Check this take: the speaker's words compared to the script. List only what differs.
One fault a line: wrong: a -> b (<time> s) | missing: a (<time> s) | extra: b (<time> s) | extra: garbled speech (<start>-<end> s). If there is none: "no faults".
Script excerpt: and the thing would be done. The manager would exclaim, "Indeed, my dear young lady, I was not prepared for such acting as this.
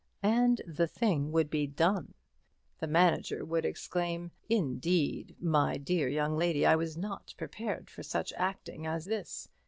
no faults